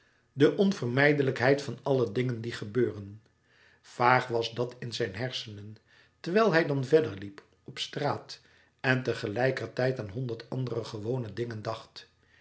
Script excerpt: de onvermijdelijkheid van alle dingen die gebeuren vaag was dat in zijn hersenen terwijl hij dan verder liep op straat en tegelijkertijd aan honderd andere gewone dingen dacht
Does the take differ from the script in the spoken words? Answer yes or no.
no